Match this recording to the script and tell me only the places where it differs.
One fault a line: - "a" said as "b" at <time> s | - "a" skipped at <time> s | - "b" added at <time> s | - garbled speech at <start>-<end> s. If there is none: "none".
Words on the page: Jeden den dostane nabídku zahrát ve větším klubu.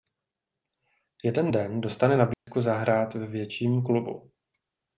none